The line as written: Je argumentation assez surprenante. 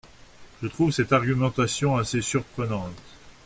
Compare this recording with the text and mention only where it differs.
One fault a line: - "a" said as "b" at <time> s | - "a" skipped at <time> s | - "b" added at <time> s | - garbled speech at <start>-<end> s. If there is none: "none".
- "trouve cette" added at 0.6 s